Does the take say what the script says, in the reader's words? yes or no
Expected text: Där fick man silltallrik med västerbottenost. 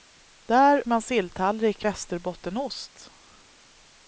no